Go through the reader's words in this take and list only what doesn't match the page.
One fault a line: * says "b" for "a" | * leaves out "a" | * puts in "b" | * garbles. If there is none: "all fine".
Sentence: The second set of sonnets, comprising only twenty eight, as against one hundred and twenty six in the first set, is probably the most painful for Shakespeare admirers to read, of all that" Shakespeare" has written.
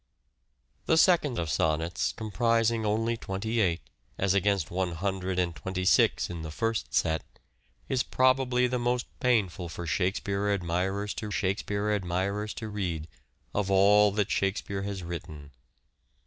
* leaves out "set"
* puts in "Shakespeare admirers to"